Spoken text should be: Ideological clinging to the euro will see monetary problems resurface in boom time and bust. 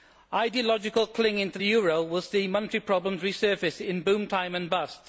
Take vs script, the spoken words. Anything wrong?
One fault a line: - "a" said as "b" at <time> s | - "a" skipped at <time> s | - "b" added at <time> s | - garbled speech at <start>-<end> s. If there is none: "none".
none